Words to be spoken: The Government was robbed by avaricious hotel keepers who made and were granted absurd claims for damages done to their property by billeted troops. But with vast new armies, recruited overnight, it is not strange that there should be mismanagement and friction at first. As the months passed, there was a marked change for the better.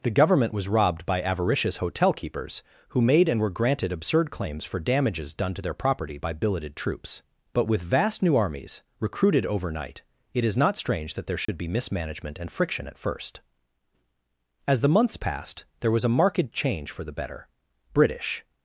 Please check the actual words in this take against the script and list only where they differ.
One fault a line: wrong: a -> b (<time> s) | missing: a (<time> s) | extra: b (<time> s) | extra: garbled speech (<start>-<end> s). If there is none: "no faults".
extra: British (17.9 s)